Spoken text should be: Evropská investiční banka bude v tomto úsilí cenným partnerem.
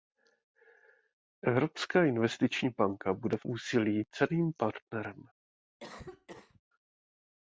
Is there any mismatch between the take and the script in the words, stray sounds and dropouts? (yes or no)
yes